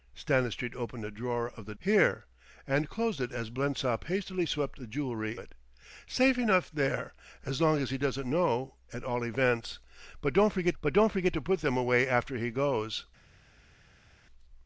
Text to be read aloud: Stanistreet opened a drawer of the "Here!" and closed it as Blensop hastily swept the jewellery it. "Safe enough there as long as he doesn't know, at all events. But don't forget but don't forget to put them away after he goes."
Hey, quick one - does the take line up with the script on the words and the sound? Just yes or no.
yes